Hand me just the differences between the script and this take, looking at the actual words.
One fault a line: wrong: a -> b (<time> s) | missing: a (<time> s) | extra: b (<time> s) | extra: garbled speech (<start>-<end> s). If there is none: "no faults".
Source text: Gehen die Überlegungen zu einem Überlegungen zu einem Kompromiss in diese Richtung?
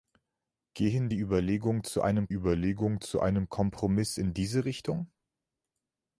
no faults